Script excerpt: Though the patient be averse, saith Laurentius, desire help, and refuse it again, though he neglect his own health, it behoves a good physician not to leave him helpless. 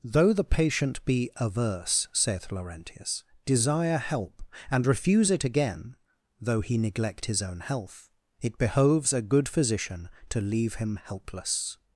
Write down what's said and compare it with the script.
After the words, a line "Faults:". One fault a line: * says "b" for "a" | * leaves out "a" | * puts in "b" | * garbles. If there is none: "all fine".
Though the patient be averse, saith Laurentius, desire help, and refuse it again, though he neglect his own health, it behoves a good physician to leave him helpless.
Faults:
* leaves out "not"